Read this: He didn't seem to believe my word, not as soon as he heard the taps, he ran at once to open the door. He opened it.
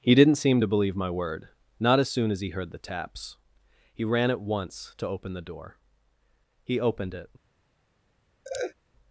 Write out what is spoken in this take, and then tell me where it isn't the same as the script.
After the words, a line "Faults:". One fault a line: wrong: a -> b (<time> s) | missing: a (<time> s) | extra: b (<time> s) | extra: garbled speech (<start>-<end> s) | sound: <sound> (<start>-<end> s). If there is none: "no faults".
He didn't seem to believe my word, not as soon as he heard the taps, he ran at once to open the door. He opened it.
Faults:
sound: laugh (8.4-8.7 s)